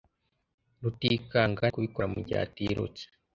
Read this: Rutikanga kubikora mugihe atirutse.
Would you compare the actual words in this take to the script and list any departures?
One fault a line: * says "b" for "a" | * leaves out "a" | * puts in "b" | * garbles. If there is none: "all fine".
all fine